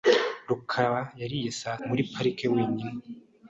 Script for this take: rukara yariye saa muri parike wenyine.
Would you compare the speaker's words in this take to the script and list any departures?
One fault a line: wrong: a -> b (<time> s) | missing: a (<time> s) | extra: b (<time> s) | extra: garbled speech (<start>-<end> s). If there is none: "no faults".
no faults